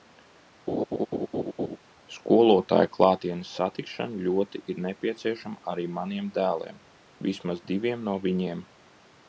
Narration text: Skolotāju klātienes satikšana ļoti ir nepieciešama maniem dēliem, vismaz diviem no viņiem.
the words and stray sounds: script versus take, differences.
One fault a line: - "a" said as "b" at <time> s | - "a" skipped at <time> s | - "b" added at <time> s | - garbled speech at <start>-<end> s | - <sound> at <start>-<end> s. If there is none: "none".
- laugh at 0.7-1.8 s
- "arī" added at 5.7 s